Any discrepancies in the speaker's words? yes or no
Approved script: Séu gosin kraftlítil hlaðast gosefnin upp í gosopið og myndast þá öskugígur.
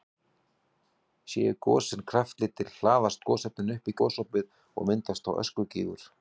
no